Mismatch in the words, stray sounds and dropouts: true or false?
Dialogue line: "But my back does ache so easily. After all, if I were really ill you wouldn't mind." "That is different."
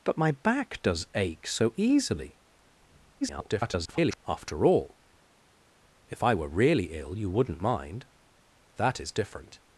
true